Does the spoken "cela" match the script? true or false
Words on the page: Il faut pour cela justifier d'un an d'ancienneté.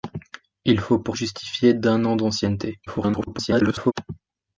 false